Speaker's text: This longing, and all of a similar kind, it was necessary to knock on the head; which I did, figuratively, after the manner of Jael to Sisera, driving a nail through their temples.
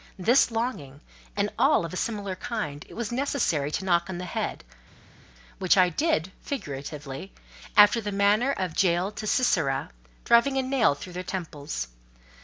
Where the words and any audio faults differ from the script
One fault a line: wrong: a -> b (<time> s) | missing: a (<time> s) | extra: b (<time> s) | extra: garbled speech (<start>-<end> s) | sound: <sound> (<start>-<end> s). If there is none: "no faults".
no faults